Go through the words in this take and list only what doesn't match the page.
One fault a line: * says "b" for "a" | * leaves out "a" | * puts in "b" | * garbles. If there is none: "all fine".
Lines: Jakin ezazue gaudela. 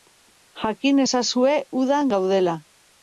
* puts in "udan"